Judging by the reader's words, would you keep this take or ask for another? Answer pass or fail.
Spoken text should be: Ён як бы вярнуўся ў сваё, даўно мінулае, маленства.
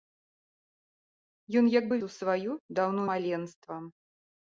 fail